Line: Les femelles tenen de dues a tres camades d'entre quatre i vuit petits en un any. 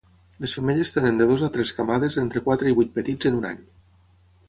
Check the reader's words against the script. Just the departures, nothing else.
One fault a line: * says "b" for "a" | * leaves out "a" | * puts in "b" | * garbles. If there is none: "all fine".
all fine